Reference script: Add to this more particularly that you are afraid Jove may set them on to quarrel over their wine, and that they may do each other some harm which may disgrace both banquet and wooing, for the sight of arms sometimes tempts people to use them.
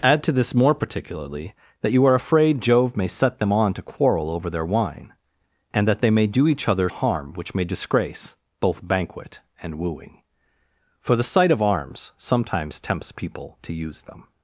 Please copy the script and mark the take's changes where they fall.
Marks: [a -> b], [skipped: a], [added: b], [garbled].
Add to this more particularly that you are afraid Jove may set them on to quarrel over their wine, and that they may do each other [skipped: some] harm which may disgrace both banquet and wooing, for the sight of arms sometimes tempts people to use them.